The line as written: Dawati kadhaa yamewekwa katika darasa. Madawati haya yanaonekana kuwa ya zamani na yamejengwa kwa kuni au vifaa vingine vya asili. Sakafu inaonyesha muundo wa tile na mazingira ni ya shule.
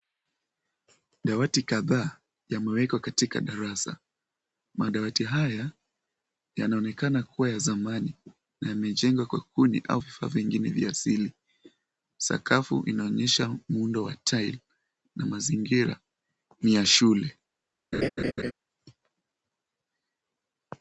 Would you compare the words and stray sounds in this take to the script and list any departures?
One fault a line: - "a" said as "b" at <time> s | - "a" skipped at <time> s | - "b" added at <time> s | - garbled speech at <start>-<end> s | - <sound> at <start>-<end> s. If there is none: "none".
- laugh at 17.9-18.5 s